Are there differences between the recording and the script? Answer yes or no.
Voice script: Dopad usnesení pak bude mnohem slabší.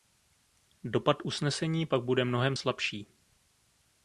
no